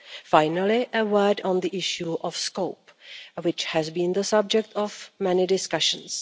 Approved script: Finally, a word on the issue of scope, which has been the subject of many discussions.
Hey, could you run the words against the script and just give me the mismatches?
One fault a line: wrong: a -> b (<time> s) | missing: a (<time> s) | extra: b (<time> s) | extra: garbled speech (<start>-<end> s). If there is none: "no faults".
no faults